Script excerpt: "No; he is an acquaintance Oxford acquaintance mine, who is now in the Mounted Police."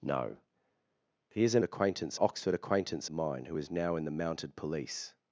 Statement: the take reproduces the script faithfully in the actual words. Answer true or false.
true